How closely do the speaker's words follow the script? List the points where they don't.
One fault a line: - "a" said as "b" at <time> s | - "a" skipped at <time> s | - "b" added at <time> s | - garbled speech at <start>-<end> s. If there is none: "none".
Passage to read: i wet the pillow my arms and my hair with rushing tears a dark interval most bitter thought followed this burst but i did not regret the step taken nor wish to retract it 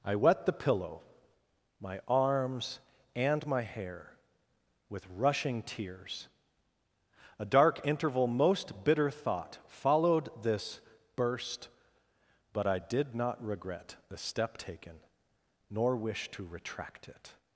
none